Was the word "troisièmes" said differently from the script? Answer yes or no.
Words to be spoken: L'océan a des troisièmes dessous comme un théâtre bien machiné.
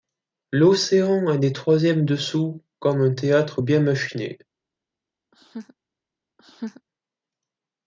no